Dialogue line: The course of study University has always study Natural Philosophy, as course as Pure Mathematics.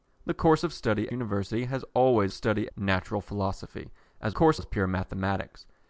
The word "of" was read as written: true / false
true